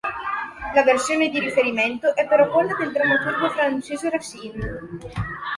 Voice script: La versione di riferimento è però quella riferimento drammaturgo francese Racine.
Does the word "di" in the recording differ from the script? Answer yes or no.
no